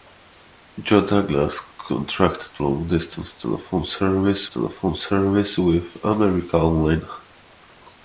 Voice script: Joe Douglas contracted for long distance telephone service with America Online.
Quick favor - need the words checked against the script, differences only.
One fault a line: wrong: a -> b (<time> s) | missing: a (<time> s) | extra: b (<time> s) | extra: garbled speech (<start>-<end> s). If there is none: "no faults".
missing: for (2.6 s)
extra: telephone service (4.4 s)